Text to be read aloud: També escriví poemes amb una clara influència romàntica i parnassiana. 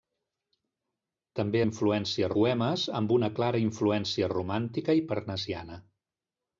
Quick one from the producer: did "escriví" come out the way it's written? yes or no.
no